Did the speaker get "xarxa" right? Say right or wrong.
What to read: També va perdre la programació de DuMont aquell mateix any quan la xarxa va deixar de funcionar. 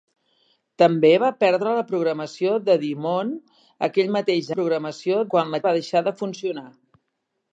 wrong